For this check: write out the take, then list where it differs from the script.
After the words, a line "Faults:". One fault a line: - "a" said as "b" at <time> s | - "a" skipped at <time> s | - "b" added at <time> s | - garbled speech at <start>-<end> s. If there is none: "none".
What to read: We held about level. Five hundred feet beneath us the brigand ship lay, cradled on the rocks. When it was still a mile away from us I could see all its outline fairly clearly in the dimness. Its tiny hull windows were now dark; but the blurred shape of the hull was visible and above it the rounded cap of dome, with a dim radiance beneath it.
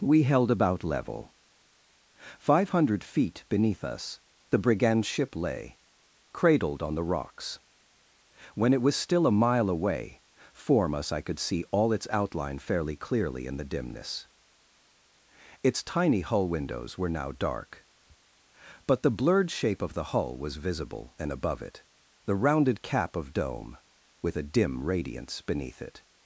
We held about level. Five hundred feet beneath us the brigand ship lay, cradled on the rocks. When it was still a mile away form us I could see all its outline fairly clearly in the dimness. Its tiny hull windows were now dark; but the blurred shape of the hull was visible and above it the rounded cap of dome, with a dim radiance beneath it.
Faults:
- "from" said as "form" at 10.5 s